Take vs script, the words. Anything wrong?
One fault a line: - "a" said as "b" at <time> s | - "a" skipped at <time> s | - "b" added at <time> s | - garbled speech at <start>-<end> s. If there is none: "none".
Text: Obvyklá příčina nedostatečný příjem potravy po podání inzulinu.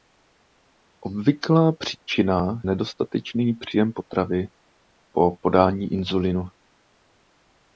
none